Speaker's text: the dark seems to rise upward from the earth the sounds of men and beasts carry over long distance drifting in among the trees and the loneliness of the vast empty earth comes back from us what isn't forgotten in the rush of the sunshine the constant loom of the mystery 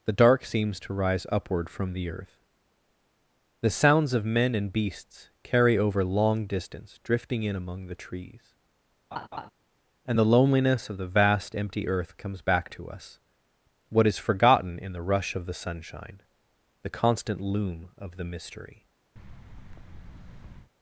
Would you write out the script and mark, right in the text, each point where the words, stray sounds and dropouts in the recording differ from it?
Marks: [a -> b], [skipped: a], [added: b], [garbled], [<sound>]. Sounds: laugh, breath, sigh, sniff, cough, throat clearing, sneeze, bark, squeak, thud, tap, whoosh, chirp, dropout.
the dark seems to rise upward from the earth the sounds of men and beasts carry over long distance drifting in among the trees [laugh] and the loneliness of the vast empty earth comes back [from -> to] us what [isn't -> is] forgotten in the rush of the sunshine the constant loom of the mystery [thud]